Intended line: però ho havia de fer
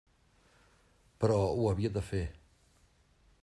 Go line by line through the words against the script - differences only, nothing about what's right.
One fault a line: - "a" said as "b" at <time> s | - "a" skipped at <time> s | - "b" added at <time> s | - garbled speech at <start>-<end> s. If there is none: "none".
none